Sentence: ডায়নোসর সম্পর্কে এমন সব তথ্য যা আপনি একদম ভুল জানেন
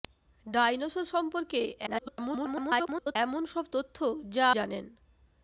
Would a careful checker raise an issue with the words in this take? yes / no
yes